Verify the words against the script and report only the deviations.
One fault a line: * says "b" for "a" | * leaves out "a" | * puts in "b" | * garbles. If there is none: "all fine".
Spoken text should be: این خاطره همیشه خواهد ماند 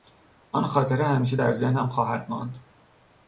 * says "آن" for "این"
* puts in "در ذهنم"